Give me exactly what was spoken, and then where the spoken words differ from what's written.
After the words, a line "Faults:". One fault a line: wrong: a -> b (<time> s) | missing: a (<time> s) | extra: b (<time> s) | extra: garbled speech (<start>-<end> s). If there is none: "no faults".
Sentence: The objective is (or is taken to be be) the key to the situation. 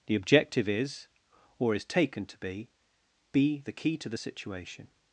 The objective is (or is taken to be be) the key to the situation.
Faults:
no faults